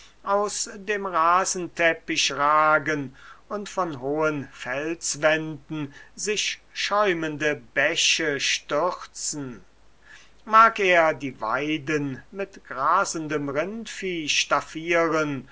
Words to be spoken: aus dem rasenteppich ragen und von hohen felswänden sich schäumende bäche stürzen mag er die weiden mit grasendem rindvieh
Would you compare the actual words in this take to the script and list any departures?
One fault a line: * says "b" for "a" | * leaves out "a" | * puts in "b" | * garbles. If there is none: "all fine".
all fine